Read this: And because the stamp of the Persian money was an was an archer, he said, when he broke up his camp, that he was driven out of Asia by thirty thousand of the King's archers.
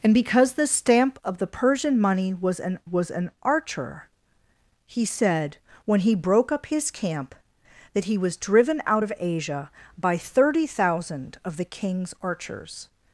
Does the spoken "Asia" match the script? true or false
true